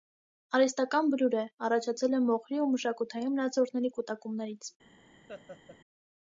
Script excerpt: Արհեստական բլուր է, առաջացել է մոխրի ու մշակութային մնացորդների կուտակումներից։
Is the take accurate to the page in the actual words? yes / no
yes